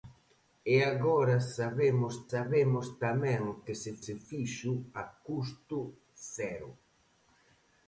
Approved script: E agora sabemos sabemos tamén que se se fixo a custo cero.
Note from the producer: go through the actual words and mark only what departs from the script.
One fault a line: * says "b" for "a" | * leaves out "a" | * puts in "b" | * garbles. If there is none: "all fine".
all fine